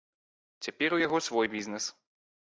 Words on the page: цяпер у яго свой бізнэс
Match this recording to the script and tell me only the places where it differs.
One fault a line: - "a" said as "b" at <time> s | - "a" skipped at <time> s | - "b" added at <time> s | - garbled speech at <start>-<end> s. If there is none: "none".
none